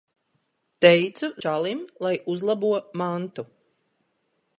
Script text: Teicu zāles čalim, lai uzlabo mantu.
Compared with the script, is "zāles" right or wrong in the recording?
wrong